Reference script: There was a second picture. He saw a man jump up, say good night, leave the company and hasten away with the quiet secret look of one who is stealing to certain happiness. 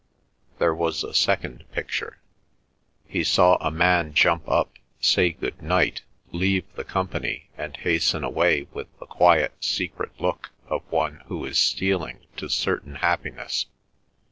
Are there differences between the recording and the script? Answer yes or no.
no